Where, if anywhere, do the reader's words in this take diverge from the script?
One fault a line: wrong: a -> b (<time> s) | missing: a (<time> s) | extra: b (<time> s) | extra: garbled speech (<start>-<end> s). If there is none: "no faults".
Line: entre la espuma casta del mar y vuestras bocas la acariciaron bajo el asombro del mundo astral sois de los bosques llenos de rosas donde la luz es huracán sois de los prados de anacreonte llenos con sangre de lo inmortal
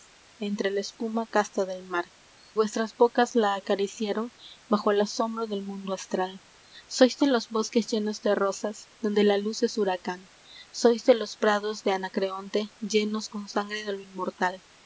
missing: y (2.0 s)